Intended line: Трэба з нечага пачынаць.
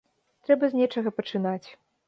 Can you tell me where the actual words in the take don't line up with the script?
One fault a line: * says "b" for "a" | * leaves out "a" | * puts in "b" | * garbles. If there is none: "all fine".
all fine